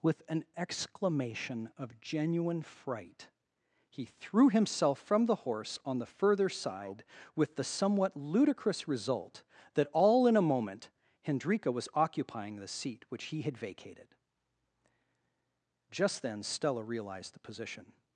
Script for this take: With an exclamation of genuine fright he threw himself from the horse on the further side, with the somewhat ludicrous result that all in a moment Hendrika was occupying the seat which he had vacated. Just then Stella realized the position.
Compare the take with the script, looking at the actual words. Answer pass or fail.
pass